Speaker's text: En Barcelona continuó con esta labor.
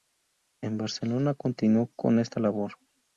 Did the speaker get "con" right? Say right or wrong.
right